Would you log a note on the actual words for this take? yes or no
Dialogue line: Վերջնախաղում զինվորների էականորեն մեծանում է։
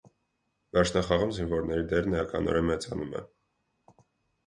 yes